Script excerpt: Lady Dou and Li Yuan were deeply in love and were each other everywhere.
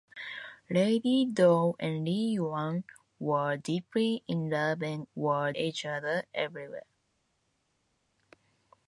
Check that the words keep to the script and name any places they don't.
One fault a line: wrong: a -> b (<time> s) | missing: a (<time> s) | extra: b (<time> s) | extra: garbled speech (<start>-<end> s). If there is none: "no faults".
no faults